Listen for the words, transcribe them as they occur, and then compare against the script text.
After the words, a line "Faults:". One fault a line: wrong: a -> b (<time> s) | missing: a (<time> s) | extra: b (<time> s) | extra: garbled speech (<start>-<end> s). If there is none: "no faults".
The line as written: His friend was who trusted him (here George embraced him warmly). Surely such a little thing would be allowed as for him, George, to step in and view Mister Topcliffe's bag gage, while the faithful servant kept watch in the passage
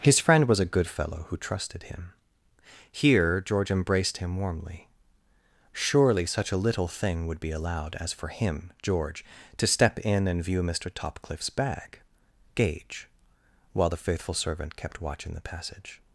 His friend was a good fellow who trusted him (here George embraced him warmly). Surely such a little thing would be allowed as for him, George, to step in and view Mister Topcliffe's bag gage, while the faithful servant kept watch in the passage
Faults:
extra: a good fellow (0.6 s)